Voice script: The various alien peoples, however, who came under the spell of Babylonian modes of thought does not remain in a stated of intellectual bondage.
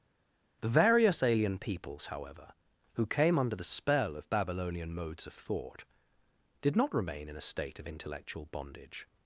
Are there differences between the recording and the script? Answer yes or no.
yes